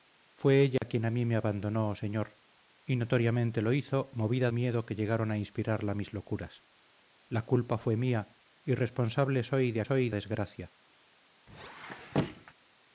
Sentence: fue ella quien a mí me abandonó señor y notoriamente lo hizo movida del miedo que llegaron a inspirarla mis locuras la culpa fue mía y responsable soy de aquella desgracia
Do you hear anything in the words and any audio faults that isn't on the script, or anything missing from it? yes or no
yes